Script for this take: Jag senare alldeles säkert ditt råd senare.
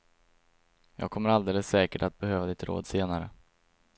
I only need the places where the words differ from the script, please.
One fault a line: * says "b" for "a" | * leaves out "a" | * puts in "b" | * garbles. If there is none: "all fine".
* says "kommer" for "senare"
* puts in "att behöva"